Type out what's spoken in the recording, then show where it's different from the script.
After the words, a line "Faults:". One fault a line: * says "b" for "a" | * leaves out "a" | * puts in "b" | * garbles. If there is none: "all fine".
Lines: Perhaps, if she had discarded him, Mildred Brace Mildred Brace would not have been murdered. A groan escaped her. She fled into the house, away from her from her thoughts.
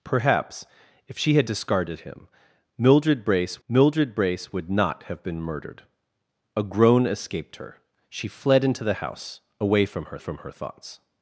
Perhaps, if she had discarded him, Mildred Brace Mildred Brace would not have been murdered. A groan escaped her. She fled into the house, away from her from her thoughts.
Faults:
all fine